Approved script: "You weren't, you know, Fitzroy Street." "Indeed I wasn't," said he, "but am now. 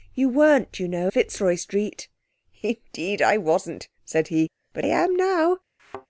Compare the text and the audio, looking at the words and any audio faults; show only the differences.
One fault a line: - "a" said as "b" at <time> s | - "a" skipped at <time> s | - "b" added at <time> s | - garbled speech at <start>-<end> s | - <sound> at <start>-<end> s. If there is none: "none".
- thud at 5.8-6.1 s